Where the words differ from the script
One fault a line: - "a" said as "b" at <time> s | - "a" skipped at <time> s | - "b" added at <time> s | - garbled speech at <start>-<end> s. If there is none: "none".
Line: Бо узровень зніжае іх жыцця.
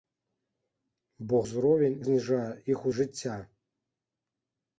none